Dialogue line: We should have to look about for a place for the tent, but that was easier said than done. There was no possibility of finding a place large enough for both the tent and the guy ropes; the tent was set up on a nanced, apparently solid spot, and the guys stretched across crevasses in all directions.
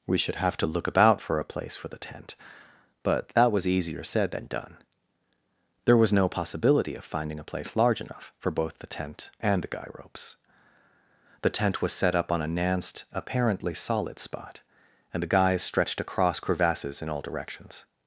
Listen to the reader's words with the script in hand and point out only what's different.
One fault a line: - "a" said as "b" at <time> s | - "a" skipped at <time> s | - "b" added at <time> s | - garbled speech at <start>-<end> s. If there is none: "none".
none